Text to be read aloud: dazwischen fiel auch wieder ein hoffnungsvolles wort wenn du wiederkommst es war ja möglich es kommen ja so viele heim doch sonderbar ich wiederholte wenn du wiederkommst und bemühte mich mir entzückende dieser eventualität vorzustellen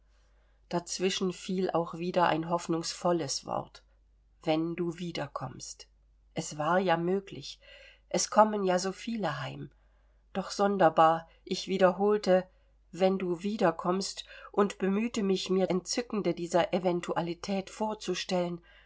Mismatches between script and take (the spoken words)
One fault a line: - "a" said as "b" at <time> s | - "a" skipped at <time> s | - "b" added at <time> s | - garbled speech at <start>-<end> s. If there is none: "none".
none